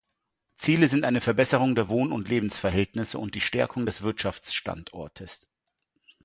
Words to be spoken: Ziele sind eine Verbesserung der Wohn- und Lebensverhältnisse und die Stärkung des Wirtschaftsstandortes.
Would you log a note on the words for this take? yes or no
no